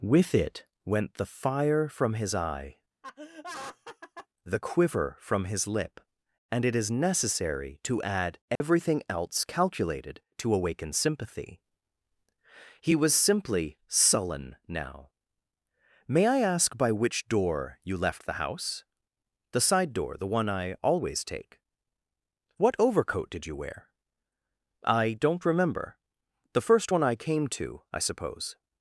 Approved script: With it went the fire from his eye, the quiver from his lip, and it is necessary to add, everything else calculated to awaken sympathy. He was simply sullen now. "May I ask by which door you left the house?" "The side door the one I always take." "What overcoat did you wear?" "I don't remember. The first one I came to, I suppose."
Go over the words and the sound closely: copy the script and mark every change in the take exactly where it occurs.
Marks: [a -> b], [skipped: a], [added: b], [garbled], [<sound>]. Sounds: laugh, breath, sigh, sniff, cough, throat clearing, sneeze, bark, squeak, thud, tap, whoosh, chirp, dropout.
With it went the fire from his eye, [laugh] the quiver from his lip, and it is necessary to add, everything [dropout] else calculated to awaken sympathy. He was simply sullen now. "May I ask by which door you left the house?" "The side door the one I always take." "What overcoat did you wear?" "I don't remember. The first one I came to, I suppose."